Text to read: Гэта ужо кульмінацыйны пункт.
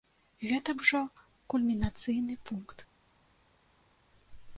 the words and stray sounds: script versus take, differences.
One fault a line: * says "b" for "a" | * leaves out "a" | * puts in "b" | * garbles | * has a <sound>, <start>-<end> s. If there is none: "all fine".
all fine